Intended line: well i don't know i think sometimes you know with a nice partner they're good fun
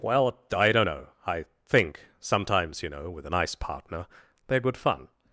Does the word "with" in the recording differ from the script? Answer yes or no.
no